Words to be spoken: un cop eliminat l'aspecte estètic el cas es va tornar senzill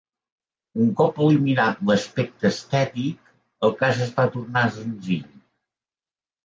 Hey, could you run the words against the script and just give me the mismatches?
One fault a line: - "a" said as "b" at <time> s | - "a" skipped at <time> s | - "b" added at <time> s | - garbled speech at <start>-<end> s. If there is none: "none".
none